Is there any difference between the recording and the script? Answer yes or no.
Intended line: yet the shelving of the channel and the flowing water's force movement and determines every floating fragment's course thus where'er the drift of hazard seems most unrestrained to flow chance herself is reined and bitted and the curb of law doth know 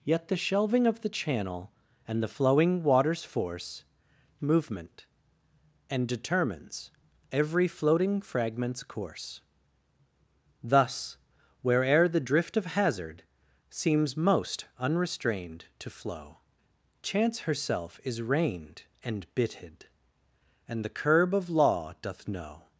no